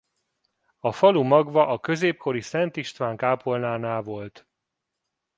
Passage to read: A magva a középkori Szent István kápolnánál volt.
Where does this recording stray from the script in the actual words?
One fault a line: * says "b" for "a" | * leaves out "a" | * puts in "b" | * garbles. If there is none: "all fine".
* puts in "falu"